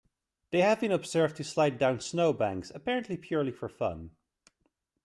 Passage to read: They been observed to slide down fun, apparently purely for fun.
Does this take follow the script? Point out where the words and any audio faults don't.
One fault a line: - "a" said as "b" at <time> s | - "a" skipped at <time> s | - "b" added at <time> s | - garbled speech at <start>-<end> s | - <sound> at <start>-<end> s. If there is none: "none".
- "have" added at 0.6 s
- "fun" said as "snowbanks" at 2.0 s